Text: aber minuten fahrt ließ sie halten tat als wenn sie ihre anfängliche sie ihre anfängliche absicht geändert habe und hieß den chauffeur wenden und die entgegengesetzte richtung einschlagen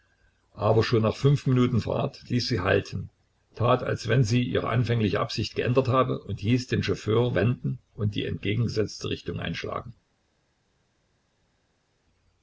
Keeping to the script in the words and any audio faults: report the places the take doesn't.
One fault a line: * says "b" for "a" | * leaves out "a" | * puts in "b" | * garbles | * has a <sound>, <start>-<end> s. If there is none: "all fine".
* puts in "schon nach fünf"
* leaves out "sie ihre anfängliche"